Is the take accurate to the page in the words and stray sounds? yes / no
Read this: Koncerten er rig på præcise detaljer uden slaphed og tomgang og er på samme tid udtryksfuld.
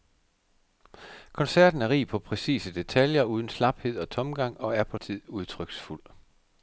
no